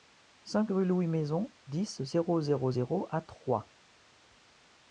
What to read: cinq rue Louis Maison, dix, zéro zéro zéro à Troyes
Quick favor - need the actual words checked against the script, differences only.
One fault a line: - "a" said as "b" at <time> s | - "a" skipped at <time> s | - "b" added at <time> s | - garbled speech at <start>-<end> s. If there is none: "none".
none